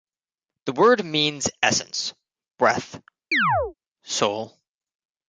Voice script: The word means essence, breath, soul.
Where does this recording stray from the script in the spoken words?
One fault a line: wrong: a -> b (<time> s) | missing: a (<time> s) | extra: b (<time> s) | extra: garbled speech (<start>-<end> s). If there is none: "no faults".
no faults